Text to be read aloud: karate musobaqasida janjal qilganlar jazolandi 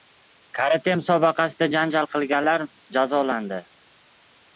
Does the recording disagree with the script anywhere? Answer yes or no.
no